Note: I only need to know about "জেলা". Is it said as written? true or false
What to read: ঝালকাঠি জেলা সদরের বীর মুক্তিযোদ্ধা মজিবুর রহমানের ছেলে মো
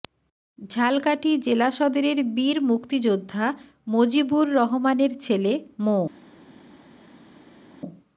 true